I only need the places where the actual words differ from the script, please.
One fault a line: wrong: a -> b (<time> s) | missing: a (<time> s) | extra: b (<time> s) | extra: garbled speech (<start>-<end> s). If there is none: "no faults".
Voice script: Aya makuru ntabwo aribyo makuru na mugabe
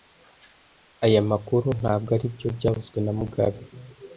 wrong: makuru -> byavuzwe (2.6 s)